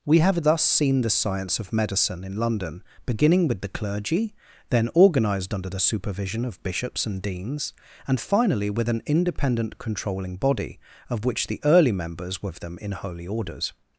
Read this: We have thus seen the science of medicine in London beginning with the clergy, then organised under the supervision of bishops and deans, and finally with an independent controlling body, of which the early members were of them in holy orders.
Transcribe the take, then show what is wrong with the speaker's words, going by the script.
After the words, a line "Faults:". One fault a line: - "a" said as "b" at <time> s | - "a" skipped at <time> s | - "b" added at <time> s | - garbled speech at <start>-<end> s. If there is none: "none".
We have thus seen the science of medicine in London beginning with the clergy, then organised under the supervision of bishops and deans, and finally with an independent controlling body, of which the early members were of them in holy orders.
Faults:
none